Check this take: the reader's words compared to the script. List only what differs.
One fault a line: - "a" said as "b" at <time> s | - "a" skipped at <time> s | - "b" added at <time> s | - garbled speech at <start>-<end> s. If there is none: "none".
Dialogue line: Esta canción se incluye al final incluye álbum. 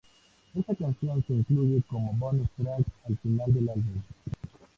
- "como Bonus Track" added at 1.8 s
- "incluye" said as "del" at 3.5 s